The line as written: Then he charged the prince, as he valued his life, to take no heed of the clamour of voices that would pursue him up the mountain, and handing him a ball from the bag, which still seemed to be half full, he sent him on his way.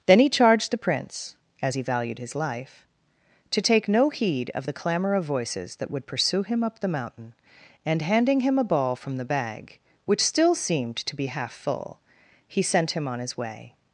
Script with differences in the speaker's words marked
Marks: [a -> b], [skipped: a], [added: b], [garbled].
Then he charged the prince, as he valued his life, to take no heed of the clamour of voices that would pursue him up the mountain, and handing him a ball from the bag, which still seemed to be half full, he sent him on his way.